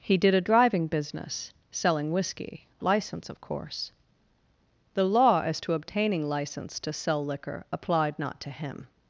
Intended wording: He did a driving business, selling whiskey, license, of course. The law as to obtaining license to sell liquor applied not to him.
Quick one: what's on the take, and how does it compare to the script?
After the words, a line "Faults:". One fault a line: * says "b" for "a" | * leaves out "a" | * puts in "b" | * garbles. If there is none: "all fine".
He did a driving business, selling whiskey, license, of course. The law as to obtaining license to sell liquor applied not to him.
Faults:
all fine